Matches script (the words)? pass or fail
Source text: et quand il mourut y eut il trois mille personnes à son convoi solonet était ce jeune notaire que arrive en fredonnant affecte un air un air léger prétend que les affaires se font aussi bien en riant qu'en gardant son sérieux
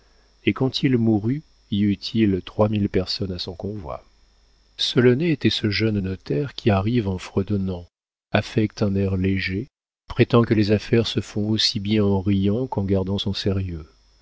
fail